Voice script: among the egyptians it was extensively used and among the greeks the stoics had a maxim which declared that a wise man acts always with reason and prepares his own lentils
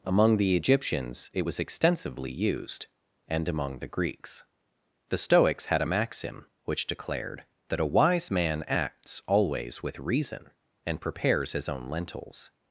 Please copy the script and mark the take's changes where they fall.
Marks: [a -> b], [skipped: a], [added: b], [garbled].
among the egyptians it was extensively used and among the greeks the stoics had a maxim which declared that a wise man acts always with reason and prepares his own lentils